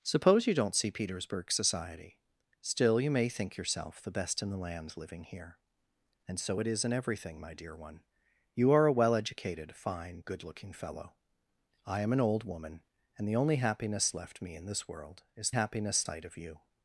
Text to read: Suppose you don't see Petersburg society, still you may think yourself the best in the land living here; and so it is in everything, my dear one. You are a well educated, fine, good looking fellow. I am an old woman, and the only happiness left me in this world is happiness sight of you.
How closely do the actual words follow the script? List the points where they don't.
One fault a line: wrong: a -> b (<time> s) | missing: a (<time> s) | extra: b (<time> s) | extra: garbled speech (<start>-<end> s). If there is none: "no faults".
no faults